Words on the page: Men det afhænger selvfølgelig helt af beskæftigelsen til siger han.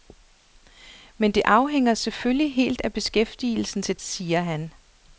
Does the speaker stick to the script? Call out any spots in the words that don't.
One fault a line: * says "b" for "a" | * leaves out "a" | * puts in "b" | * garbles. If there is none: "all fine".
all fine